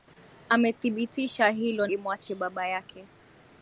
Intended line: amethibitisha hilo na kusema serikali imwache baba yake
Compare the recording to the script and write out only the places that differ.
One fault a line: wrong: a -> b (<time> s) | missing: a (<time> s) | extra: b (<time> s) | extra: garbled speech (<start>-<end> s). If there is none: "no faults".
missing: na kusema serikali (1.9 s)